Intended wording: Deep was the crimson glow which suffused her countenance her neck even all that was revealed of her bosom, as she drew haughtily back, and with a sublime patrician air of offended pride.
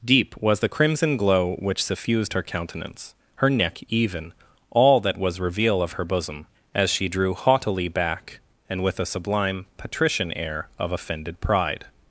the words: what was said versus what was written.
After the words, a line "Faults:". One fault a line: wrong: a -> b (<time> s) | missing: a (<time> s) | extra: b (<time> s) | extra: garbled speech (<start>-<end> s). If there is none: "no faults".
Deep was the crimson glow which suffused her countenance her neck even all that was reveal of her bosom, as she drew haughtily back, and with a sublime patrician air of offended pride.
Faults:
wrong: revealed -> reveal (5.4 s)